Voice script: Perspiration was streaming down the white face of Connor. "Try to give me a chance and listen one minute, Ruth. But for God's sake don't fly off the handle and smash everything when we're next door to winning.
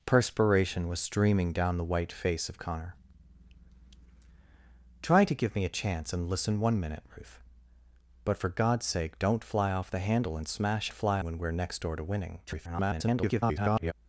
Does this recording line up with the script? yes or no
no